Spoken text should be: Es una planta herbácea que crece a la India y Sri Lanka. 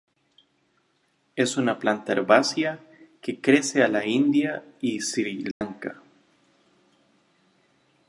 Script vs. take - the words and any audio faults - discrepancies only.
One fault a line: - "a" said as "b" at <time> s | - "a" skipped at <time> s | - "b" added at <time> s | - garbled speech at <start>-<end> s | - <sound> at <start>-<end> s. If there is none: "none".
- dropout at 5.5-5.6 s